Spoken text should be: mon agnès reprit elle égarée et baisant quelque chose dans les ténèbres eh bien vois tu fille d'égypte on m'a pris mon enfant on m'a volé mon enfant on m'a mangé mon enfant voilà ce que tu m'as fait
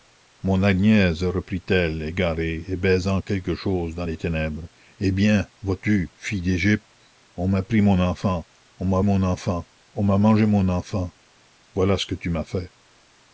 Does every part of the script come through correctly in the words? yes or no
no